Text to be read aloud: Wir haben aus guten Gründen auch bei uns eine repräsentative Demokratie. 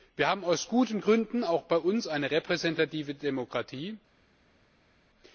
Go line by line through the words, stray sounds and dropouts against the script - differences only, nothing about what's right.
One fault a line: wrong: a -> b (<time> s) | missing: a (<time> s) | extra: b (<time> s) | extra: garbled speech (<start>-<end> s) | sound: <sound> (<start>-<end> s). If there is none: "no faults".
no faults